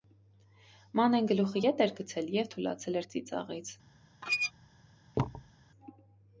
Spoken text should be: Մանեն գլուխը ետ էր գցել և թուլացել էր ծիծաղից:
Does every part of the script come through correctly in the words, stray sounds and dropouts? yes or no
no